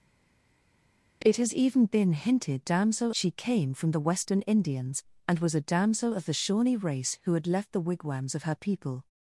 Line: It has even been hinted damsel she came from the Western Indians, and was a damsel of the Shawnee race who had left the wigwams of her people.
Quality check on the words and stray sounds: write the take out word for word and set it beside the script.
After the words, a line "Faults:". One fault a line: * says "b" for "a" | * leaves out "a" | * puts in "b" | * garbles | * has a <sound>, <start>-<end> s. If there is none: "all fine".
It has even been hinted damsel she came from the Western Indians, and was a damsel of the Shawnee race who had left the wigwams of her people.
Faults:
all fine